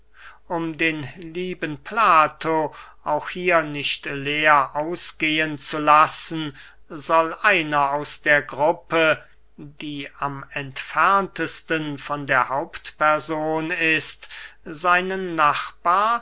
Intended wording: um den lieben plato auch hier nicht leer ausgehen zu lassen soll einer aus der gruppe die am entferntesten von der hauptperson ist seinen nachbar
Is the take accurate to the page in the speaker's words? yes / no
yes